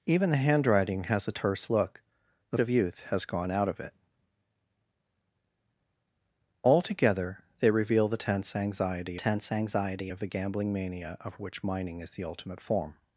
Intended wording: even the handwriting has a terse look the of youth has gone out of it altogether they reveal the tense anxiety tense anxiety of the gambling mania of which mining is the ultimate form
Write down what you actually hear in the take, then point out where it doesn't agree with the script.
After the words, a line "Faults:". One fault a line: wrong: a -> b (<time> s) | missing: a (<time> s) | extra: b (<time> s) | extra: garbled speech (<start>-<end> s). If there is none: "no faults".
even the handwriting has a terse look the of youth has gone out of it altogether they reveal the tense anxiety tense anxiety of the gambling mania of which mining is the ultimate form
Faults:
no faults